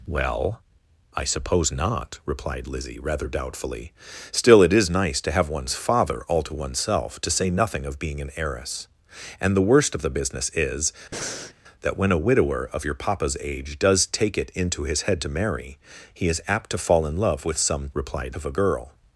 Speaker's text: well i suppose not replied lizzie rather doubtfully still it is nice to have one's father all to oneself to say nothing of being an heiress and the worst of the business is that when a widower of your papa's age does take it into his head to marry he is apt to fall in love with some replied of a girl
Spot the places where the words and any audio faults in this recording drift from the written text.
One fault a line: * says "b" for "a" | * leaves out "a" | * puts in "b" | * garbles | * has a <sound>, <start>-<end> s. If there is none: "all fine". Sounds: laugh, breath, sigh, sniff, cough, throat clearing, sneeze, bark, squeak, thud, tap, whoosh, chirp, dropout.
* has a breath, 11.1-11.5 s